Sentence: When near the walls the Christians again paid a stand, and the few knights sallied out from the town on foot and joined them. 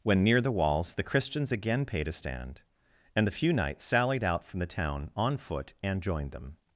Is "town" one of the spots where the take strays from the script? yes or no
no